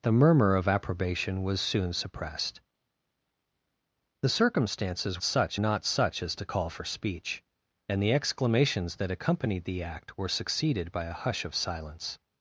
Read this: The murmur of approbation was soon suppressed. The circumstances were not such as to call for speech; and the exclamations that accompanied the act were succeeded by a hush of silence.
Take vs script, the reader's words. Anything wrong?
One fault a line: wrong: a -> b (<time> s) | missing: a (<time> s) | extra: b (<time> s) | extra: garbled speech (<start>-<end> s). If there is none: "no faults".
wrong: were -> such (5.2 s)